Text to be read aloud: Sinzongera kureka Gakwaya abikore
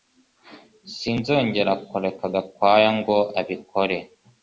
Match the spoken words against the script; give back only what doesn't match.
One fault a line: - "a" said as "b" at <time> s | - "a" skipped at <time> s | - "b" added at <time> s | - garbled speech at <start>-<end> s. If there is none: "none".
- "ngo" added at 3.0 s